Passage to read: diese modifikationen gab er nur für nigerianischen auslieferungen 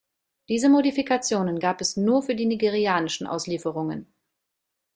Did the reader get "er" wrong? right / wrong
wrong